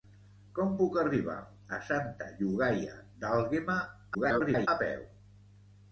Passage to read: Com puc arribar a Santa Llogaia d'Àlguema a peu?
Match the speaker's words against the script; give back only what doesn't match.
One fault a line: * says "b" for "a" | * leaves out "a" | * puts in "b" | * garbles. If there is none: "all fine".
* garbles